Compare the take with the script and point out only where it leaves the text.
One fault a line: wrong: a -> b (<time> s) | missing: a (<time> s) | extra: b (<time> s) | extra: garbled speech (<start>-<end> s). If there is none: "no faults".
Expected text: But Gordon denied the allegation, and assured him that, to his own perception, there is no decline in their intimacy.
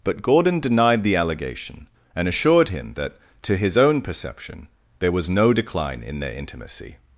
wrong: is -> was (5.1 s)